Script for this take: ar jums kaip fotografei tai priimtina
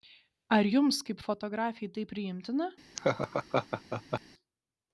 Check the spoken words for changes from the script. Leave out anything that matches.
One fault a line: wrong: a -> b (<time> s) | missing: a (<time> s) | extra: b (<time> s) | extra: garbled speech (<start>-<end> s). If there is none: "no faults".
no faults